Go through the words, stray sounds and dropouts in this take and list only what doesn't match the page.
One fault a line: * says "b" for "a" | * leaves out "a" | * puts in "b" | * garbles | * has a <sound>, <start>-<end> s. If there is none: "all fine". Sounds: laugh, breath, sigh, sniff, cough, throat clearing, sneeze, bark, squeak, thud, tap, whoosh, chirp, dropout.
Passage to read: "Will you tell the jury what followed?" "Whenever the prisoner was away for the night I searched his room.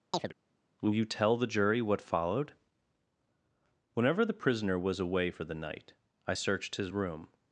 * has a chirp, 0.1-0.3 s